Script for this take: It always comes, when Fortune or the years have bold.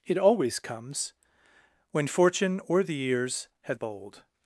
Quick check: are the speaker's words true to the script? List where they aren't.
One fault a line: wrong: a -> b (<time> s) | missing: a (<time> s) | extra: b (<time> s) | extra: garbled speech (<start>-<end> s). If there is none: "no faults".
no faults